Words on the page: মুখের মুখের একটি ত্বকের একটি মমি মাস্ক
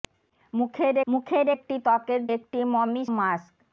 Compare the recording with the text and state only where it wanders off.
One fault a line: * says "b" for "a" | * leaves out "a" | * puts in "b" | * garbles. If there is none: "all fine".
all fine